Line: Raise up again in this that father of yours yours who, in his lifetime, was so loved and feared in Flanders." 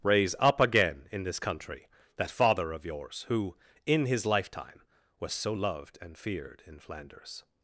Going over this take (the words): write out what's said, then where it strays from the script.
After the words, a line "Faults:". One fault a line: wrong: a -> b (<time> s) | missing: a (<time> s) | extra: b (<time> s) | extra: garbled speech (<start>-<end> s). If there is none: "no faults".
Raise up again in this country that father of yours who, in his lifetime, was so loved and feared in Flanders."
Faults:
extra: country (1.4 s)
missing: yours (3.2 s)